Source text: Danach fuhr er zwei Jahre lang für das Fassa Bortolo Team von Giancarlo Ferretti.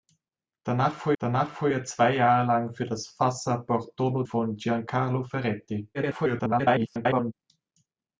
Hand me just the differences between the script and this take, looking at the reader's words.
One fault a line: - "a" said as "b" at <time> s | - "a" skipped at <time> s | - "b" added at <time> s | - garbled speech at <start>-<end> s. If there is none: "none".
- "danach fuhr" added at 1.2 s
- "Team" skipped at 4.2 s
- garbled speech at 5.9-7.3 s